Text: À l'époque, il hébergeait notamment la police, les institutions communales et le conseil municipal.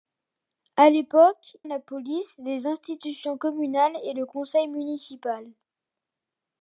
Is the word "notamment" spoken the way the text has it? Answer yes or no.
no